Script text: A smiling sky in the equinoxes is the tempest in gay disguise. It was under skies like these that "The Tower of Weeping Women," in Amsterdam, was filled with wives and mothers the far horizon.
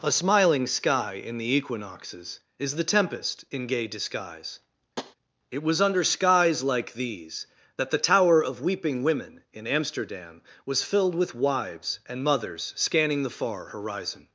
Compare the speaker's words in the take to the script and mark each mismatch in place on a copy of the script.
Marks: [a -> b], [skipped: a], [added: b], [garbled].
A smiling sky in the equinoxes is the tempest in gay disguise. It was under skies like these that "The Tower of Weeping Women," in Amsterdam, was filled with wives and mothers [added: scanning] the far horizon.